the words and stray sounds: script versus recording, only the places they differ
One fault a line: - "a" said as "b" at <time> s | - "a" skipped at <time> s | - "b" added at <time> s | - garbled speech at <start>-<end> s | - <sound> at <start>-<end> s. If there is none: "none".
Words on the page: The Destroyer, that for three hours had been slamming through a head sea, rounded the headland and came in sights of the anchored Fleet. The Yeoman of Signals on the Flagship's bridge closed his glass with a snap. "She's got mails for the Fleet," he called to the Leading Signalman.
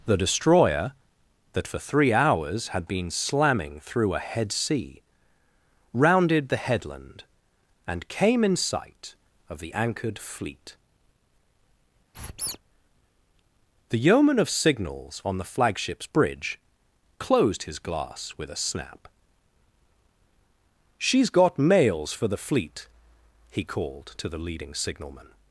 - "sights" said as "sight" at 8.6 s
- squeak at 12.1-12.6 s